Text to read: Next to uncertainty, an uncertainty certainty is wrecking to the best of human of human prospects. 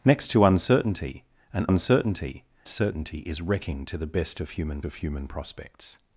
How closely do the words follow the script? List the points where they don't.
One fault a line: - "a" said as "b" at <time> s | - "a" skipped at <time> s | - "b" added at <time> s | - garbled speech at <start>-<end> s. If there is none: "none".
none